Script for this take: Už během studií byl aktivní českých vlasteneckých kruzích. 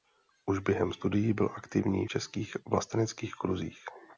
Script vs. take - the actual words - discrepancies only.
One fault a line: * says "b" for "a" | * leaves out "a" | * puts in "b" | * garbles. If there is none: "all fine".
all fine